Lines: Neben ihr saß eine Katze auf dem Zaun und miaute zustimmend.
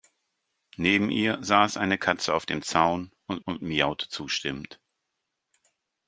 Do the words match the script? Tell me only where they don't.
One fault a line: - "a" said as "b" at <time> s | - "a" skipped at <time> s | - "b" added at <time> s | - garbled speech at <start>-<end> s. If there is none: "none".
- "und" added at 3.4 s